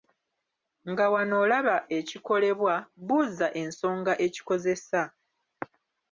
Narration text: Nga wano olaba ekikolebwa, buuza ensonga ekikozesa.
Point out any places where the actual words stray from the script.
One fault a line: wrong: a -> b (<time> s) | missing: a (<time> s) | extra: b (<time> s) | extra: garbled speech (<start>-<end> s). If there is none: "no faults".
no faults